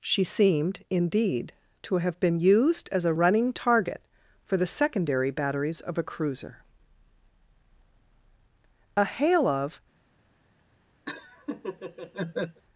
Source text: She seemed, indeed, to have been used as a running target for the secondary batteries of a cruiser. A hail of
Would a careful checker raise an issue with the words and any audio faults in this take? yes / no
yes